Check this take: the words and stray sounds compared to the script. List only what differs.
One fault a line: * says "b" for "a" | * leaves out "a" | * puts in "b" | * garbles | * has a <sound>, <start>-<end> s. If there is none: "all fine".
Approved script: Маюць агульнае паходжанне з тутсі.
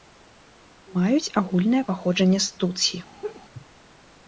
* has a laugh, 3.2-3.4 s